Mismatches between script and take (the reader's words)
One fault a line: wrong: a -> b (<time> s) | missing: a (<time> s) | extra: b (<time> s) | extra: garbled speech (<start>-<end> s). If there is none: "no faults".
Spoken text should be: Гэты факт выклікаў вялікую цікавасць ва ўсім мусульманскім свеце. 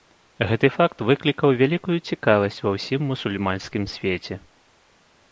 no faults